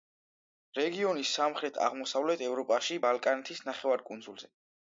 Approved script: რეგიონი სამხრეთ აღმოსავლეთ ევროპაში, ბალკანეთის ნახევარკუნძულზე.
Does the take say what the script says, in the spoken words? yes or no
yes